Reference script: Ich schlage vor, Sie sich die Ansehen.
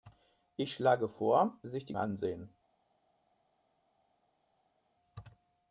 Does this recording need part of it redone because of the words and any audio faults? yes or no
no